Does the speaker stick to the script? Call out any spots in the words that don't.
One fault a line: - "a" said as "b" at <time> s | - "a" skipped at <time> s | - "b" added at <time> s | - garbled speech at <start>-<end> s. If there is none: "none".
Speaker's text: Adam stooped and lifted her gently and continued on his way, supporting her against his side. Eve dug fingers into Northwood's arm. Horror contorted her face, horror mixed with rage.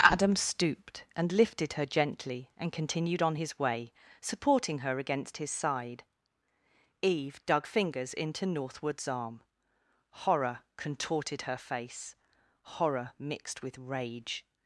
none